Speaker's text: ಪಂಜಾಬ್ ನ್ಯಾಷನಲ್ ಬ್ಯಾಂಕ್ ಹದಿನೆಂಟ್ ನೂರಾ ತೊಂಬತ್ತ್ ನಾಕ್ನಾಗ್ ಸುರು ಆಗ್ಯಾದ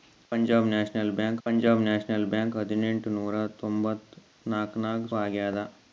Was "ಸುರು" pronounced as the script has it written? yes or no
no